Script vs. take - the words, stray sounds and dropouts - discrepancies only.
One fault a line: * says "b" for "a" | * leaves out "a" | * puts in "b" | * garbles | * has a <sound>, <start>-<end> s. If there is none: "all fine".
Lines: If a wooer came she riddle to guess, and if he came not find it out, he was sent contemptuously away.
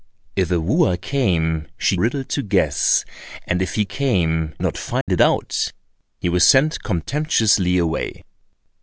* has a dropout, 5.0-5.1 s